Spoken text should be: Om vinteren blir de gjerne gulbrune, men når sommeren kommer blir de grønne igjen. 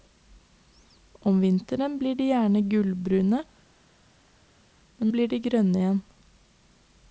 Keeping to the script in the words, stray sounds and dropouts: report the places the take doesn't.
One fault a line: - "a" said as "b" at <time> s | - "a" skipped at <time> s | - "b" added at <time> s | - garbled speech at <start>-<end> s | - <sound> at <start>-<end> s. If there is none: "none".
- "når sommeren kommer" skipped at 5.1 s